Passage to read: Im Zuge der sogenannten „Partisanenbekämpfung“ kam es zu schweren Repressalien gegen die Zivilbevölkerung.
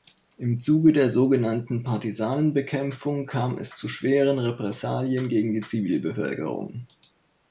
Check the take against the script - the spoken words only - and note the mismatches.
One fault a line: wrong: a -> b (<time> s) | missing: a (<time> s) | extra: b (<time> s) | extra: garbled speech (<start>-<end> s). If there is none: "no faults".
no faults